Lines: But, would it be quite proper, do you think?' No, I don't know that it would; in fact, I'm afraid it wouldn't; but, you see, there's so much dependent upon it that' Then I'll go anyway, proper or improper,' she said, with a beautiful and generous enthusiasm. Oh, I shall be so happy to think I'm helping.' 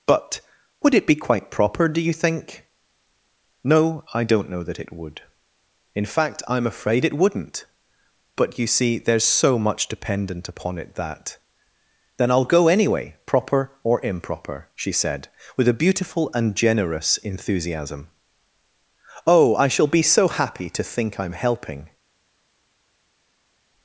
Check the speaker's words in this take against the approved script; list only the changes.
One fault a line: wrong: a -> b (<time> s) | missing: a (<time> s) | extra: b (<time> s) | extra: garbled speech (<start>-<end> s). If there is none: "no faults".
no faults